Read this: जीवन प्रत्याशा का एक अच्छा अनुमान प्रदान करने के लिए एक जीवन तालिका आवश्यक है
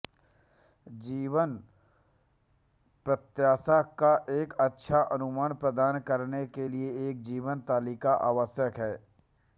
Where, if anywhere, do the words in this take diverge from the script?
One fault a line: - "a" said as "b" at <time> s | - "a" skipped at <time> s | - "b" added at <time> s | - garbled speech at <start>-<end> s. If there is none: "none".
none